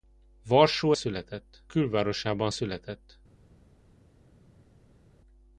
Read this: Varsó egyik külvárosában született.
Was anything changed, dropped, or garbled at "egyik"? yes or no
yes